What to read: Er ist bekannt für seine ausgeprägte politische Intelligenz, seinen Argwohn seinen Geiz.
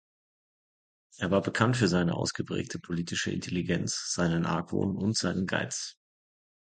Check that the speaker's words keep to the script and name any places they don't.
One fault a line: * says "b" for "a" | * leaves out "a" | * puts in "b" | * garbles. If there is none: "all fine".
* says "war" for "ist"
* puts in "und"